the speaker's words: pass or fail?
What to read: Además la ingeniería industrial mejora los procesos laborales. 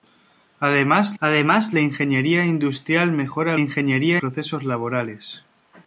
fail